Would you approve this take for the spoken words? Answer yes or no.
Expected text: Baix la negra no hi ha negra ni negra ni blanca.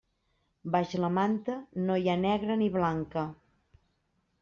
no